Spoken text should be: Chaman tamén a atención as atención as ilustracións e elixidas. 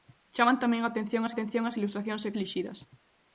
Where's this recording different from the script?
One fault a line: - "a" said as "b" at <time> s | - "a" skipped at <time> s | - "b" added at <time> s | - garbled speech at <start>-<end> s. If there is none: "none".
none